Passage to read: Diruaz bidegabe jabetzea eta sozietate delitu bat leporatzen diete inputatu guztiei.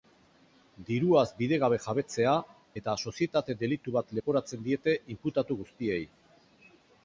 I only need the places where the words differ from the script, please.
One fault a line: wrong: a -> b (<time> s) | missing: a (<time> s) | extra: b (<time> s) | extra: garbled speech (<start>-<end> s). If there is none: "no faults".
no faults